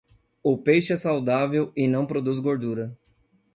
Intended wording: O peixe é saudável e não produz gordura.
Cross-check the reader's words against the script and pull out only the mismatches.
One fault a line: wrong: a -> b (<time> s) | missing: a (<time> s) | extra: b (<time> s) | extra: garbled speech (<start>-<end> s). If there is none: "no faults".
no faults